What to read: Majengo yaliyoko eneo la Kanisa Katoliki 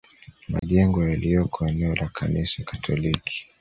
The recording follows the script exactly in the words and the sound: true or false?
false